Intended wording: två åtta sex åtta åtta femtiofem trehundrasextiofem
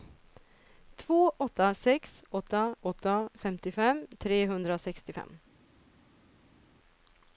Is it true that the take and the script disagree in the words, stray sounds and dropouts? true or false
false